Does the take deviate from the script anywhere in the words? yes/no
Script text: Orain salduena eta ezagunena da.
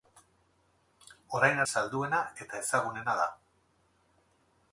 no